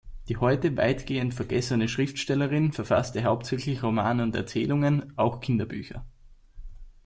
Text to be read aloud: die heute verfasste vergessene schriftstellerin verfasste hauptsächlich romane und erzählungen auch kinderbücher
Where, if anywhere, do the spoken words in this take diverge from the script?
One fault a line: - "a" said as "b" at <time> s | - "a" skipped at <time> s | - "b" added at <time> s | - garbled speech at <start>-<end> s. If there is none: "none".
- "verfasste" said as "weitgehend" at 0.8 s